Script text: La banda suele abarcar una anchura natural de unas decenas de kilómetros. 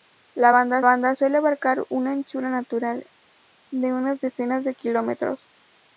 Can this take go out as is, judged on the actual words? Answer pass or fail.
fail